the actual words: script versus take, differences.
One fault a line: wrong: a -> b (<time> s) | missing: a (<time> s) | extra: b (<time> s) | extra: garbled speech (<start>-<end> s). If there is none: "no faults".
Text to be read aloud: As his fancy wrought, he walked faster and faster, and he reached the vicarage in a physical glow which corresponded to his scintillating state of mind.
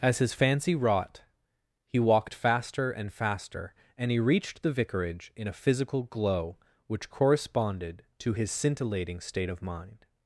no faults